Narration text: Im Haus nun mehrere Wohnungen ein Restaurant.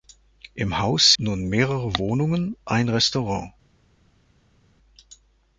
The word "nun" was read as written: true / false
true